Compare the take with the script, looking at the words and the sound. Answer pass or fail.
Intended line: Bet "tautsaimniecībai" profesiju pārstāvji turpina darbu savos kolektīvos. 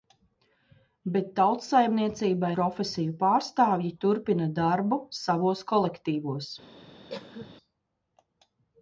fail